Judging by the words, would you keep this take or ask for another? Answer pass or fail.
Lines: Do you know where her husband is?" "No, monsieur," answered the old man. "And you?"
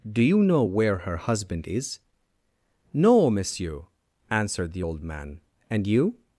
pass